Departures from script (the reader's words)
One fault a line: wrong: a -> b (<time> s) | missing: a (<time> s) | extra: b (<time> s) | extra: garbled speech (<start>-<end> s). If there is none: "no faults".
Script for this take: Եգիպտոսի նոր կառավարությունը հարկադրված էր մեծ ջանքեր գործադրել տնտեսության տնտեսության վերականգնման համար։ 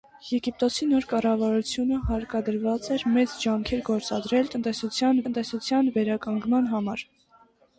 no faults